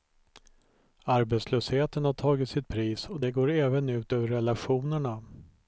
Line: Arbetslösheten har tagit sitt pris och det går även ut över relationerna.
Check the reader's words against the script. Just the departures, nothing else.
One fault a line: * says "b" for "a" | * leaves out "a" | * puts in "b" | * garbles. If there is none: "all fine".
all fine